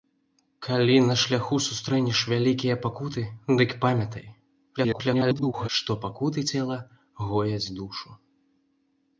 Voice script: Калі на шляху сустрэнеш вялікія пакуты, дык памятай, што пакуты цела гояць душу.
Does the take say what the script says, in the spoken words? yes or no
no